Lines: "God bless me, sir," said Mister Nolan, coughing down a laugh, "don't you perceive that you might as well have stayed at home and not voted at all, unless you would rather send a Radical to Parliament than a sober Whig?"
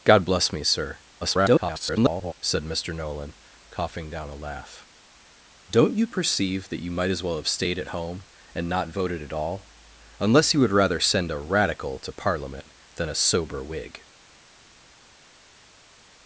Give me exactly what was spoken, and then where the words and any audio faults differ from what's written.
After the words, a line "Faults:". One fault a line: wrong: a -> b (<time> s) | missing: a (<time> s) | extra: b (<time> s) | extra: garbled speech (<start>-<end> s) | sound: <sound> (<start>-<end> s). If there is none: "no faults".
"God bless me, sir," [garbled] said Mister Nolan, coughing down a laugh, "don't you perceive that you might as well have stayed at home and not voted at all, unless you would rather send a Radical to Parliament than a sober Whig?"
Faults:
extra: garbled speech (1.2-2.3 s)